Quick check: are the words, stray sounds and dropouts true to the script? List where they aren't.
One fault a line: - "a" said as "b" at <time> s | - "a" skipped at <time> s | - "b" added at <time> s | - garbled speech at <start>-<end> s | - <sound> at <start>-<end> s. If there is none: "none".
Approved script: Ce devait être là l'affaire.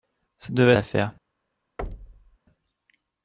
- "être là" skipped at 0.7 s
- thud at 1.8-2.4 s